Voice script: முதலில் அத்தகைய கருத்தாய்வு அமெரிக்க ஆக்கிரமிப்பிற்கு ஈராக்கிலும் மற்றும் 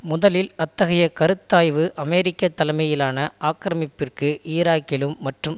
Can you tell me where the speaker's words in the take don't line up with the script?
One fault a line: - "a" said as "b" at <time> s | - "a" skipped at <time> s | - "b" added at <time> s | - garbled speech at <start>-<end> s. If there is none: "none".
- "தலைமையிலான" added at 2.5 s